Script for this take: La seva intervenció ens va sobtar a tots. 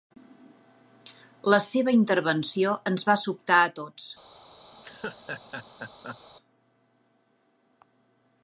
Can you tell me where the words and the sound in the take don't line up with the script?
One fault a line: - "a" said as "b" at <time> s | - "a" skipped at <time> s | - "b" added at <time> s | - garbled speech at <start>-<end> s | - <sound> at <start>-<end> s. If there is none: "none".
- laugh at 4.7-6.2 s